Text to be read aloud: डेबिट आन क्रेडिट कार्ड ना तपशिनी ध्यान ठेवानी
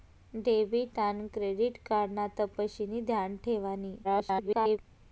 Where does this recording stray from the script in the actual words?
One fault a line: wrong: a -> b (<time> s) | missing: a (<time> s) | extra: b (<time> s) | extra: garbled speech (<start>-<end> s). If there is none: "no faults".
extra: garbled speech (4.0-4.8 s)